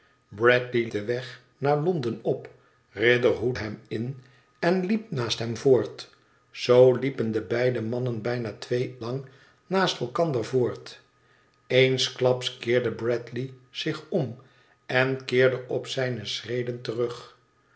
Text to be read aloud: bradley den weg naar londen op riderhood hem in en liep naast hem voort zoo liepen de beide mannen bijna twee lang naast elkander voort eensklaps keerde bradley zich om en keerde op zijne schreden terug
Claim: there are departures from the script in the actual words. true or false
false